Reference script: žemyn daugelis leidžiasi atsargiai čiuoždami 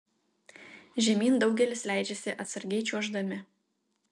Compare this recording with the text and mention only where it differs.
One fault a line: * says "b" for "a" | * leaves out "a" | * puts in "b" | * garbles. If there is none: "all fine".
all fine